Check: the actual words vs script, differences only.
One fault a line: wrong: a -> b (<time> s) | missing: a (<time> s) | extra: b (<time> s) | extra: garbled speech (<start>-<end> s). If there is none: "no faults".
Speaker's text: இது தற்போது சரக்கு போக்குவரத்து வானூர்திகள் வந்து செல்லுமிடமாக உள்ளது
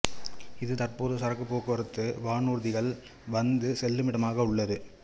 no faults